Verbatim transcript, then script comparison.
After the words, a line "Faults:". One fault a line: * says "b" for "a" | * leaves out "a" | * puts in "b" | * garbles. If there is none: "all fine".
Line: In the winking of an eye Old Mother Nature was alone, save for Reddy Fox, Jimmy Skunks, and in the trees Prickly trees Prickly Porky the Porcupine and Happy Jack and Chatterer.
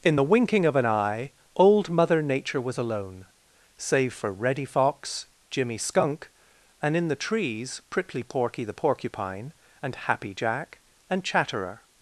In the winking of an eye Old Mother Nature was alone, save for Reddy Fox, Jimmy Skunk, and in the trees Prickly Porky the Porcupine and Happy Jack and Chatterer.
Faults:
* says "Skunk" for "Skunks"
* leaves out "trees Prickly"